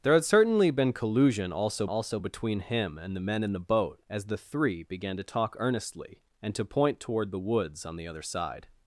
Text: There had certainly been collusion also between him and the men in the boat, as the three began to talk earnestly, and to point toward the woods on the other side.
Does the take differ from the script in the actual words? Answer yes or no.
yes